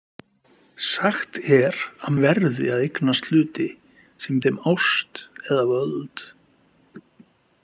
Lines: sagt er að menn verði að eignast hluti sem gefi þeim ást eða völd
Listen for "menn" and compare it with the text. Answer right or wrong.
wrong